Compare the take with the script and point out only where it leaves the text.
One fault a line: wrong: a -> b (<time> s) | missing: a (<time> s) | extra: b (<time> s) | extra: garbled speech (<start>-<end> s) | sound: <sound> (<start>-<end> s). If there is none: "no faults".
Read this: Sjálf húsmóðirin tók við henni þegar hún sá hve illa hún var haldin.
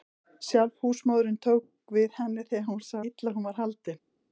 missing: hve (3.0 s)